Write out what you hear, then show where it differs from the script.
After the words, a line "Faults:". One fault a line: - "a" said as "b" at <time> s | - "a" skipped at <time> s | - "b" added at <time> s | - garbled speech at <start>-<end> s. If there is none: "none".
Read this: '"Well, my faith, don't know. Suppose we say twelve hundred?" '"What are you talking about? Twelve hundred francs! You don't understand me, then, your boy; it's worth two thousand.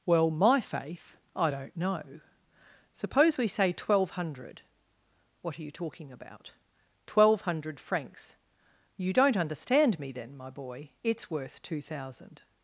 '"Well, my faith, I don't know. Suppose we say twelve hundred?" '"What are you talking about? Twelve hundred francs! You don't understand me, then, my boy; it's worth two thousand.
Faults:
- "I" added at 1.4 s
- "your" said as "my" at 10.4 s